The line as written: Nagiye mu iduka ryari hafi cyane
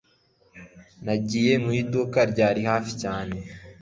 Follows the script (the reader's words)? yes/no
yes